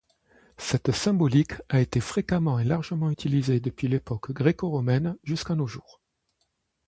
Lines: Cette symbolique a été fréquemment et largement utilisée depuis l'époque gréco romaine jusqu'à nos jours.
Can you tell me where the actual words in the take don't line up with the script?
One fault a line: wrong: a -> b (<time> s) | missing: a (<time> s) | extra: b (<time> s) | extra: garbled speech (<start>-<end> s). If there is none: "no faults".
no faults